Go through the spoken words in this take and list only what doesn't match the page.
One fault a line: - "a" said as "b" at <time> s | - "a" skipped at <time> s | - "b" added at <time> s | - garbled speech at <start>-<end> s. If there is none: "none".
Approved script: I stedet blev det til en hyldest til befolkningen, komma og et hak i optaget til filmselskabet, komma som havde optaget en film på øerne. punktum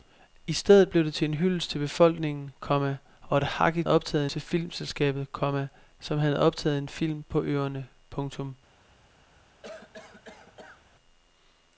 none